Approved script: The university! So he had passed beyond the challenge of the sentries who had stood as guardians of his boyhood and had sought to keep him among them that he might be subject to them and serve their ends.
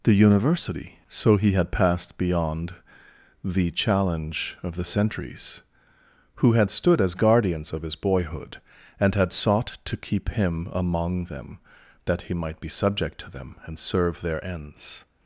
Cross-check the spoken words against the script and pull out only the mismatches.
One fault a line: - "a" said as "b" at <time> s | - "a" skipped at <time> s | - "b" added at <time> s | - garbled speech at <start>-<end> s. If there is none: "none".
none